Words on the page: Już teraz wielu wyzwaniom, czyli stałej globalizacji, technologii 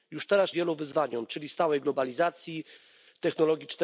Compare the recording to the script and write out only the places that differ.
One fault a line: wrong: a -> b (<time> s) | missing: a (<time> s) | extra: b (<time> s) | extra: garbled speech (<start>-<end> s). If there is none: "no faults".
no faults